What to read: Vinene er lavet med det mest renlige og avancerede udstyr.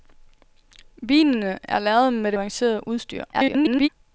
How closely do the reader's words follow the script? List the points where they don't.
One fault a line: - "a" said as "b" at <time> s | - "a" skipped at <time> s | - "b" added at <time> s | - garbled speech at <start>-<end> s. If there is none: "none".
- "mest renlige og" skipped at 2.4 s
- garbled speech at 3.3-3.9 s